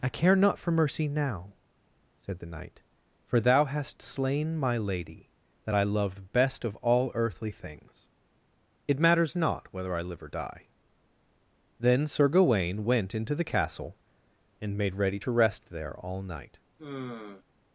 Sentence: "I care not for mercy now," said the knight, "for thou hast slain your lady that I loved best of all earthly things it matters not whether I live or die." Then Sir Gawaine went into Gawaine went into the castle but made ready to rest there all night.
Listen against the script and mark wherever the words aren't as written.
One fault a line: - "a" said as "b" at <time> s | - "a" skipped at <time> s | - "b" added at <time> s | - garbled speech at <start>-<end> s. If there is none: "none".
- "your" said as "my" at 4.6 s
- "Gawaine went into" skipped at 13.4 s
- "but" said as "and" at 14.6 s